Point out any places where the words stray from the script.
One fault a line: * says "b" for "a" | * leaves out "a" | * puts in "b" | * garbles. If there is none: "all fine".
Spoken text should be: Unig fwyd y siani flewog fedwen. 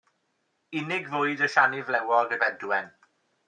all fine